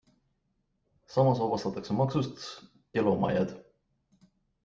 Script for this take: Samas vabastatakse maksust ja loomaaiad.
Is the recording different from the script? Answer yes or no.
no